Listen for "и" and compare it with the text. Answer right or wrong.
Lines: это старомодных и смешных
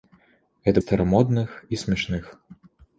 right